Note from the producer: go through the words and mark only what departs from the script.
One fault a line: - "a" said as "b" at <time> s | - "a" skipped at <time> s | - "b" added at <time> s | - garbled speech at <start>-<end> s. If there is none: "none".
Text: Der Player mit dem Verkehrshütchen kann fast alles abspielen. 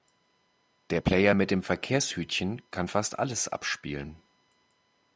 none